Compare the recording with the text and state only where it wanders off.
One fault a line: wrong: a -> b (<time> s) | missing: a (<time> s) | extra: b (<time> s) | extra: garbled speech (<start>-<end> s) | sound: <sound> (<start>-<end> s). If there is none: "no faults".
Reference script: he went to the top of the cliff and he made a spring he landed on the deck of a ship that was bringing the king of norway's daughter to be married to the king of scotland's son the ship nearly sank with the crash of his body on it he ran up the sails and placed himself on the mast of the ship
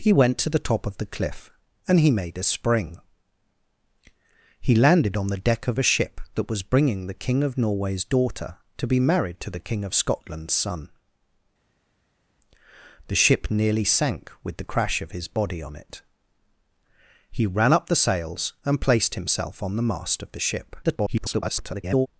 extra: garbled speech (20.8-22.1 s)